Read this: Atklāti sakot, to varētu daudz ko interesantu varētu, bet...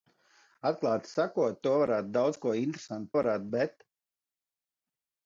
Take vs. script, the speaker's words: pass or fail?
pass